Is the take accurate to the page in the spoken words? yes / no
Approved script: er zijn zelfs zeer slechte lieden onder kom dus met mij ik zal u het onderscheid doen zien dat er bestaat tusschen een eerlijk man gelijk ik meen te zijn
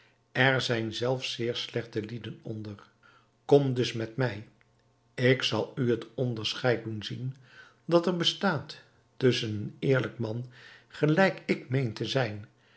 yes